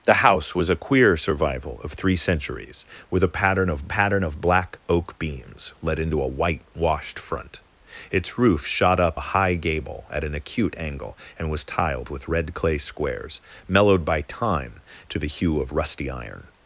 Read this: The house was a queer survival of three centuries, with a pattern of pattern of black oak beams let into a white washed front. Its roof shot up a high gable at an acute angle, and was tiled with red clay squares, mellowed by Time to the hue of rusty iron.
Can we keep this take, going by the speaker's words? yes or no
yes